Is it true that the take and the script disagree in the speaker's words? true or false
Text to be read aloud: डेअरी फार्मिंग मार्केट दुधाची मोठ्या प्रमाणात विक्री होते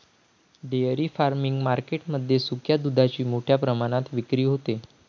true